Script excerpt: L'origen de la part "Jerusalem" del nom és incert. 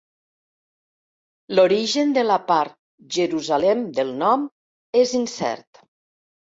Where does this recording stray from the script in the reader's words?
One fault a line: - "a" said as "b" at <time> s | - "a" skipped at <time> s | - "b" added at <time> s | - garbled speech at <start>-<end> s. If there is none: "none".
none